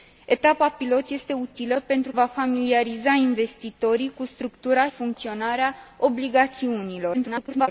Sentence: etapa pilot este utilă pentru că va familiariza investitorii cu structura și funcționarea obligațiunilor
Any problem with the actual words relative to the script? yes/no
yes